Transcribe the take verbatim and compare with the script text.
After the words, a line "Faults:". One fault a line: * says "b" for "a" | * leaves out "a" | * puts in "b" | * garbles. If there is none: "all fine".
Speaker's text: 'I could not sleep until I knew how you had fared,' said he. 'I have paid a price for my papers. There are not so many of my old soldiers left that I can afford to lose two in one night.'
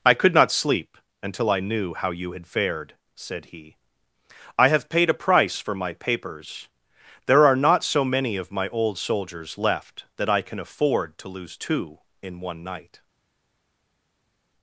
'I could not sleep until I knew how you had fared,' said he. 'I have paid a price for my papers. There are not so many of my old soldiers left that I can afford to lose two in one night.'
Faults:
all fine